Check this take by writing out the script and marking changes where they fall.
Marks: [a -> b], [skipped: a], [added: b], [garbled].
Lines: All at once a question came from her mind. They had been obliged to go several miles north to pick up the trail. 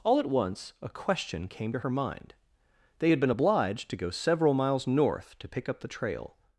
All at once a question came [from -> to] her mind. They had been obliged to go several miles north to pick up the trail.